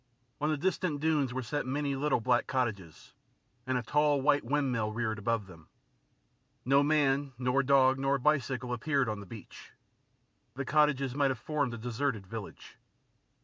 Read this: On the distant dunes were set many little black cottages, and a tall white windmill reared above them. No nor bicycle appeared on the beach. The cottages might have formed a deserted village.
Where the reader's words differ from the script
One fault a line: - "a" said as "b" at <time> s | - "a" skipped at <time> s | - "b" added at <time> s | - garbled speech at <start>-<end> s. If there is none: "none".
- "man nor dog" added at 6.8 s